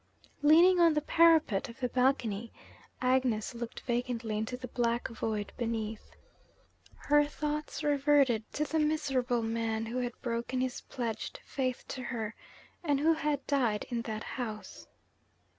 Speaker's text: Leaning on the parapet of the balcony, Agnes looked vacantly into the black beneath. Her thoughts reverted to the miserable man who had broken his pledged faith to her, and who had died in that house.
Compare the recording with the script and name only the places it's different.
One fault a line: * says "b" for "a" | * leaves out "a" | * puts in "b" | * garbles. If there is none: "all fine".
* puts in "void"